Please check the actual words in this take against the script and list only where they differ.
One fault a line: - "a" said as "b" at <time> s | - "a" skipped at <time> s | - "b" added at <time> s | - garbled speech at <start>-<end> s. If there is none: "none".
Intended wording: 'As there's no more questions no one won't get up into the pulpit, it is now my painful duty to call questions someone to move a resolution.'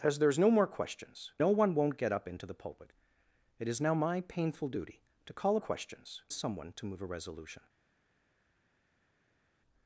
none